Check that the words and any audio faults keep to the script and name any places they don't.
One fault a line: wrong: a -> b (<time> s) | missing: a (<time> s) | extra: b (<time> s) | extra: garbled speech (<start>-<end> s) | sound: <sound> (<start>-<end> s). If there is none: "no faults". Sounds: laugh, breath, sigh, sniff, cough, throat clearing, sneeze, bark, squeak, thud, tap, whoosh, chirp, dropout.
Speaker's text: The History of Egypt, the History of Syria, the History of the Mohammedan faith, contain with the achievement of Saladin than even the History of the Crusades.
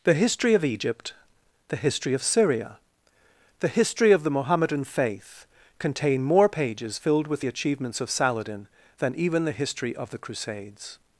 extra: more pages filled (6.2 s)
wrong: achievement -> achievements (7.5 s)